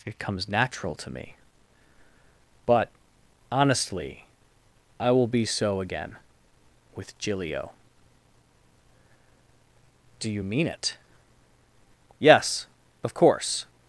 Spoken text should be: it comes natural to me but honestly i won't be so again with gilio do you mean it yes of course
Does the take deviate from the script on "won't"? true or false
true